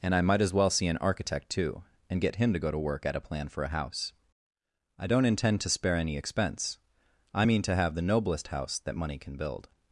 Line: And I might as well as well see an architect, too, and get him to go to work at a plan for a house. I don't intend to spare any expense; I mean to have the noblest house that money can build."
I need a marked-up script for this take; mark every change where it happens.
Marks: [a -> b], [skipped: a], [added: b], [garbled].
And I might as well [skipped: as well] see an architect, too, and get him to go to work at a plan for a house. I don't intend to spare any expense; I mean to have the noblest house that money can build."